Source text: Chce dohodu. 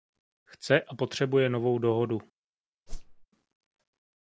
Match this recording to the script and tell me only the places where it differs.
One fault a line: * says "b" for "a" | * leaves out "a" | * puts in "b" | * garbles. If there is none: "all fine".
* puts in "a potřebuje novou"